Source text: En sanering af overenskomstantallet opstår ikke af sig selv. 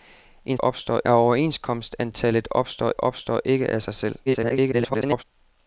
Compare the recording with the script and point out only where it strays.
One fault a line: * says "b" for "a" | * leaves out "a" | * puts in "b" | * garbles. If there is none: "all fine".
* says "opstår" for "sanering"
* puts in "opstår"
* garbles